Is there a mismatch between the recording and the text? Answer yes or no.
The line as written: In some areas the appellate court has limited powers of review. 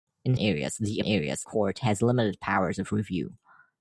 yes